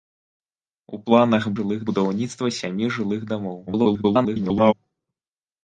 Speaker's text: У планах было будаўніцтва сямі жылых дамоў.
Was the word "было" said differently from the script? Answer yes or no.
yes